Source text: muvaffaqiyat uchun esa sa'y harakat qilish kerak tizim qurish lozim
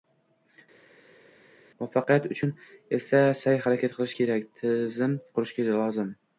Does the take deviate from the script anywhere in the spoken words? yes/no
no